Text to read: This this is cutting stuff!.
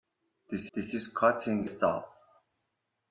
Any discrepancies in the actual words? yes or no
no